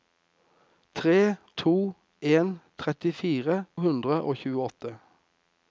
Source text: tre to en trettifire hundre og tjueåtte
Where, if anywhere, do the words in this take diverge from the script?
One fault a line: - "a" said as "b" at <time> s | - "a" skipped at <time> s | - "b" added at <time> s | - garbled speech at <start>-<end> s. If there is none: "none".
none